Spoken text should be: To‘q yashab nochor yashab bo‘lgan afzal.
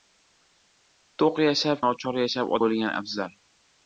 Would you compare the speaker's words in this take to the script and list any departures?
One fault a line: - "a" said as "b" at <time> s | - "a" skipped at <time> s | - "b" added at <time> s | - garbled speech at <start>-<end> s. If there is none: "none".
none